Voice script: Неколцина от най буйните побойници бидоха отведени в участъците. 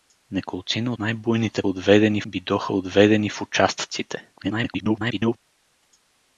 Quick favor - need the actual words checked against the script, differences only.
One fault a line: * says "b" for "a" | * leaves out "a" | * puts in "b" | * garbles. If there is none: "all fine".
* leaves out "от"
* says "отведени" for "побойници"
* garbles